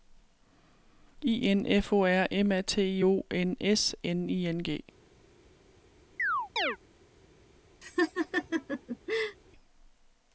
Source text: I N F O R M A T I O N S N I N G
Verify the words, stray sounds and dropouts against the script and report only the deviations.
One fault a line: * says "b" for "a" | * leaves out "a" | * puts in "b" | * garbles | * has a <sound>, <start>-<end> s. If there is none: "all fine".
* has a chirp, 6.2-6.8 s
* has a laugh, 7.8-9.4 s